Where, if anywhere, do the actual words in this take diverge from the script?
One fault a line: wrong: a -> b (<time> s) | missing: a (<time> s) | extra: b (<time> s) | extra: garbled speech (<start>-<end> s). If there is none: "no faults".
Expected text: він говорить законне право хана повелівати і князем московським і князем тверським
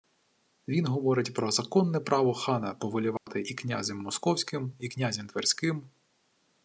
extra: про (1.3 s)